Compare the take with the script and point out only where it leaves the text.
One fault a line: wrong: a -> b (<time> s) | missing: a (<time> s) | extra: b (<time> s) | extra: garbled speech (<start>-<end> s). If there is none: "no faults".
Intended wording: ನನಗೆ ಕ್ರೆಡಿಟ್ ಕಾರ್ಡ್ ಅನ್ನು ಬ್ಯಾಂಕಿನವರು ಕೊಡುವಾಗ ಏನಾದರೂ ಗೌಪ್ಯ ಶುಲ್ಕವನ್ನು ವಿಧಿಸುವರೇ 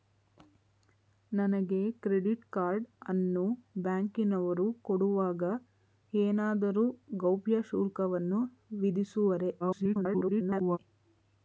extra: garbled speech (9.6-10.8 s)